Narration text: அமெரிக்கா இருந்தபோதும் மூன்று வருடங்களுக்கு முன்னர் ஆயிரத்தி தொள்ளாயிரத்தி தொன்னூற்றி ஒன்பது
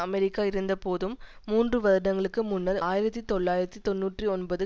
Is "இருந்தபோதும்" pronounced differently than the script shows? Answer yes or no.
no